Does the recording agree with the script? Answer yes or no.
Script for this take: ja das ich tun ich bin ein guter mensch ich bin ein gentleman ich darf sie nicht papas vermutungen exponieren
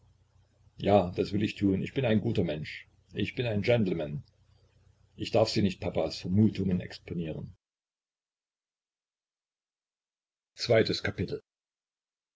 no